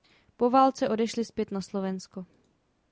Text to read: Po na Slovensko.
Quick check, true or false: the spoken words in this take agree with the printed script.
false